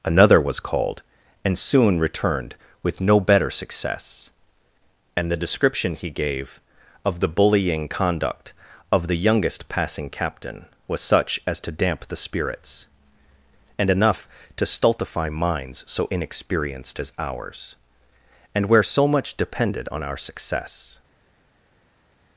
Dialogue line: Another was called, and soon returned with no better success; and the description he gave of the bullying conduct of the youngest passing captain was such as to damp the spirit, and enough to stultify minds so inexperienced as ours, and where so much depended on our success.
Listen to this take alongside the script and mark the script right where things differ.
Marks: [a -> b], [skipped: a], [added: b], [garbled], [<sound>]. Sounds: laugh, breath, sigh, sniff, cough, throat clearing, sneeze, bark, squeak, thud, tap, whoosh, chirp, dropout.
Another was called, and soon returned with no better success; and the description he gave of the bullying conduct of the youngest passing captain was such as to damp the [spirit, -> spirits] and enough to stultify minds so inexperienced as ours, and where so much depended on our success.